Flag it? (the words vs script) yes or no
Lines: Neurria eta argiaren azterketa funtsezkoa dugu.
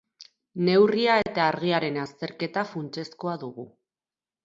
no